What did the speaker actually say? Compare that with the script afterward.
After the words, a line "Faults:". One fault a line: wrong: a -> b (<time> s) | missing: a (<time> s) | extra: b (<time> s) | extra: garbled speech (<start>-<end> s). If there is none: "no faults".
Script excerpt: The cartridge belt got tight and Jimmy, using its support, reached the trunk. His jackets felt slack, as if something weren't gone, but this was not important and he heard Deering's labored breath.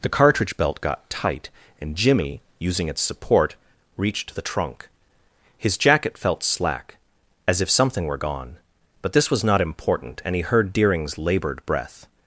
The cartridge belt got tight and Jimmy, using its support, reached the trunk. His jacket felt slack, as if something were gone, but this was not important and he heard Deering's labored breath.
Faults:
wrong: jackets -> jacket (5.8 s)
wrong: weren't -> were (8.1 s)